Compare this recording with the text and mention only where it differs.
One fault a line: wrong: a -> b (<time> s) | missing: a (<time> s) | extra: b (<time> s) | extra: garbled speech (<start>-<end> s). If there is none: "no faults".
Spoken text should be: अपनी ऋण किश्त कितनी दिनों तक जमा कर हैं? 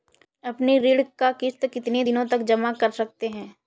extra: का (1.2 s)
extra: सकते (2.9 s)